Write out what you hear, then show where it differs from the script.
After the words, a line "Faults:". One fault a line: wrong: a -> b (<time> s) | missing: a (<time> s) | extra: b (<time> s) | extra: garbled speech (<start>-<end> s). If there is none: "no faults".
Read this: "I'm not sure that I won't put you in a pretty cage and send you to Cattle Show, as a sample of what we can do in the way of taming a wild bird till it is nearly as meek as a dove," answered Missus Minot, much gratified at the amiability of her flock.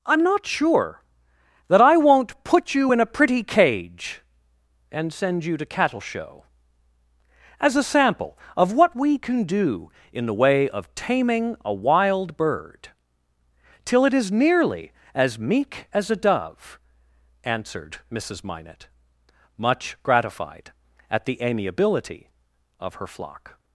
"I'm not sure that I won't put you in a pretty cage and send you to Cattle Show, as a sample of what we can do in the way of taming a wild bird till it is nearly as meek as a dove," answered Missus Minot, much gratified at the amiability of her flock.
Faults:
no faults